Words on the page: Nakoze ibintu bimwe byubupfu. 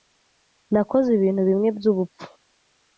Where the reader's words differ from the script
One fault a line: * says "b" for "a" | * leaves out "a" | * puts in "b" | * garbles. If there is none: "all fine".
all fine